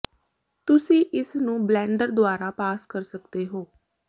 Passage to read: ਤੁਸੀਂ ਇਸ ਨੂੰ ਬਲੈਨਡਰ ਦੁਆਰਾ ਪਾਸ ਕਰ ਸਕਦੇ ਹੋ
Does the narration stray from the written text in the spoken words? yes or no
no